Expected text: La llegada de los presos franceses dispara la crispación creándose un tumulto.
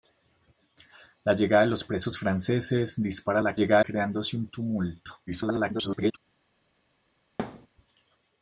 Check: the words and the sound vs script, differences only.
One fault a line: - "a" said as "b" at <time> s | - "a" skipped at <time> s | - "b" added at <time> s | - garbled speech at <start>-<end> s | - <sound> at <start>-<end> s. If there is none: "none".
- "crispación" said as "llegada" at 3.5 s
- garbled speech at 5.3-6.2 s
- thud at 7.4-7.7 s